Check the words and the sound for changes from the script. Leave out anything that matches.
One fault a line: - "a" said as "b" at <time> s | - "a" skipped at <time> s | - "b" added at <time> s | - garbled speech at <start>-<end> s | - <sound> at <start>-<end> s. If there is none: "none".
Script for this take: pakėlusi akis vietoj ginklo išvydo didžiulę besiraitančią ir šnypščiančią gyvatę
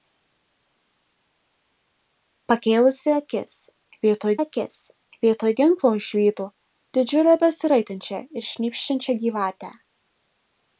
- "akis vietoj" added at 4.4 s